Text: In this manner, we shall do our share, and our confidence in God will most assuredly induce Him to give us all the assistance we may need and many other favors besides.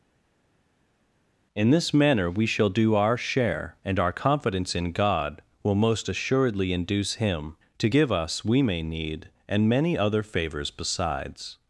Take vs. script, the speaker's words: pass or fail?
fail